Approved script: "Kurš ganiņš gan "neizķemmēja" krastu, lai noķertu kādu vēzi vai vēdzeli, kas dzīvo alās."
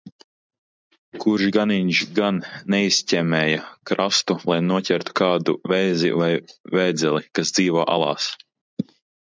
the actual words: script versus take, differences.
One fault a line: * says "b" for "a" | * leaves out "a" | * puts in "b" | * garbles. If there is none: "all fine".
all fine